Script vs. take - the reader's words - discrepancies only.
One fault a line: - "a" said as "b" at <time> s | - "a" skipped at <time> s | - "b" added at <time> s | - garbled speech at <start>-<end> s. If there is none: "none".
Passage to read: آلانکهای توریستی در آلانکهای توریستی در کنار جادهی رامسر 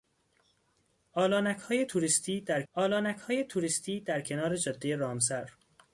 none